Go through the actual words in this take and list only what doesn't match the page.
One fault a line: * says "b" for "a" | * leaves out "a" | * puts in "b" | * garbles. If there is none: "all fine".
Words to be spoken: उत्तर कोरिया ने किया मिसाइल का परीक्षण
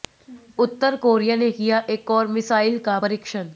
* puts in "एक और"